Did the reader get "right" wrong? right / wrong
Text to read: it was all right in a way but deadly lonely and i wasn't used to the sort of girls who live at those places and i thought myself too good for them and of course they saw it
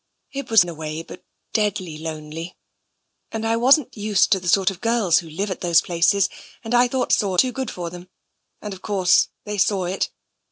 wrong